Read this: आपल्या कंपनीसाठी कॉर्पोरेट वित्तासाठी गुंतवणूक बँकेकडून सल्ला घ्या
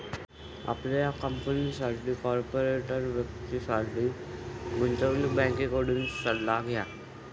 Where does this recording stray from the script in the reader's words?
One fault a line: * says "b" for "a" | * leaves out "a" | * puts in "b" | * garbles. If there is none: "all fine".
all fine